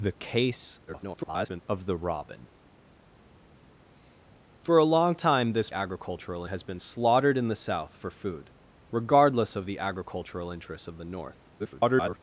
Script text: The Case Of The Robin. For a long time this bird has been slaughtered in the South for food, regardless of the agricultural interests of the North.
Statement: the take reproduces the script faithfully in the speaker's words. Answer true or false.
false